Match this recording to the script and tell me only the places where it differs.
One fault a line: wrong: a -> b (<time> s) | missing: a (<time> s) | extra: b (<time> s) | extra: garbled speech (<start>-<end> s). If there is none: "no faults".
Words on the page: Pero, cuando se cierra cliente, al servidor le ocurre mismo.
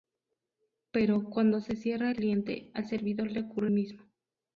no faults